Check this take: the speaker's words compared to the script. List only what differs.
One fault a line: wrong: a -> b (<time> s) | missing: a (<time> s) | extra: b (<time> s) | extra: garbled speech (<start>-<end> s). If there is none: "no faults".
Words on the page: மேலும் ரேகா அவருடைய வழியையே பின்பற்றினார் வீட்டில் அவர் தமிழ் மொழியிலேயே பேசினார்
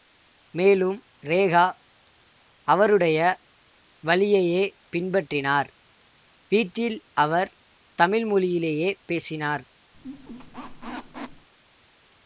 no faults